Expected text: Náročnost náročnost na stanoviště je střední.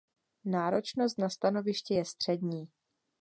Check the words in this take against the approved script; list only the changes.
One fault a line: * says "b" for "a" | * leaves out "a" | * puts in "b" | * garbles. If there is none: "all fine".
* leaves out "náročnost"